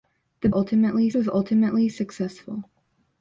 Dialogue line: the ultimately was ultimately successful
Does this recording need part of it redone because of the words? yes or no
no